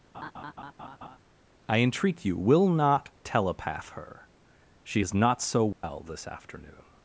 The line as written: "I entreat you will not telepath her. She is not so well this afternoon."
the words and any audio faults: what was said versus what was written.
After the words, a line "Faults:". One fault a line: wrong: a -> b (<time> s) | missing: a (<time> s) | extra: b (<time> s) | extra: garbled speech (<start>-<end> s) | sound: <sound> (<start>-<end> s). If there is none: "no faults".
"I entreat you will not telepath her. She is not so well this afternoon."
Faults:
sound: laugh (0.1-1.2 s)
sound: dropout (5.7-5.8 s)